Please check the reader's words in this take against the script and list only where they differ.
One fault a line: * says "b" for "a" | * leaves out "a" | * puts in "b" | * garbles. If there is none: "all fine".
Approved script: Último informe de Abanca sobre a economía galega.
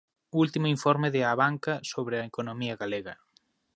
all fine